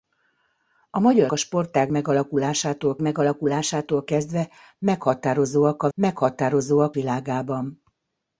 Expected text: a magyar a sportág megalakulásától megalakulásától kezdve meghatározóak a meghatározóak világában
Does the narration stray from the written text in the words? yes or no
no